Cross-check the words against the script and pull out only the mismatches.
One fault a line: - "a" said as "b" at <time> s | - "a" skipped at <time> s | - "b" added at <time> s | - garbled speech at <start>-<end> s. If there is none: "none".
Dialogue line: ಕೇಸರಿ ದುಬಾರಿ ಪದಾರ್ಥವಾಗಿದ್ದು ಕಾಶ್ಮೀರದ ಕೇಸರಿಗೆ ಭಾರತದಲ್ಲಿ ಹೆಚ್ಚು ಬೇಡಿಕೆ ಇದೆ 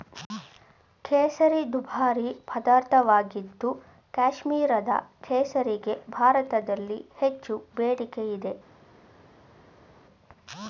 none